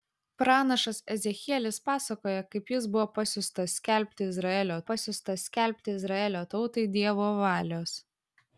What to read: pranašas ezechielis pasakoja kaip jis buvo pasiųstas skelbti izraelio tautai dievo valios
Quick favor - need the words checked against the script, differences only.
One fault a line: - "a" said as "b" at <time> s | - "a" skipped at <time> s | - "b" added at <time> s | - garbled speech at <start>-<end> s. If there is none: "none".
- "pasiųstas skelbti izraelio" added at 4.9 s